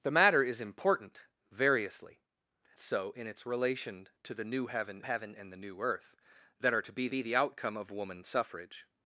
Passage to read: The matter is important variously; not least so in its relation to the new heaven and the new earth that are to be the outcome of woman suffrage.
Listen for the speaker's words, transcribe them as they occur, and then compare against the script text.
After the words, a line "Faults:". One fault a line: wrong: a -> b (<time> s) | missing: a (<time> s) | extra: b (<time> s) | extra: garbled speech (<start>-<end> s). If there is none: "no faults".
The matter is important variously; so in its relation to the new heaven heaven and the new earth that are to be be the outcome of woman suffrage.
Faults:
missing: not least (2.2 s)
extra: heaven (5.0 s)
extra: be (7.1 s)